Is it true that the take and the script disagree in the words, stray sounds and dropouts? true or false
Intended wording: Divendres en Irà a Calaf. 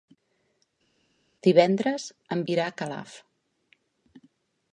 false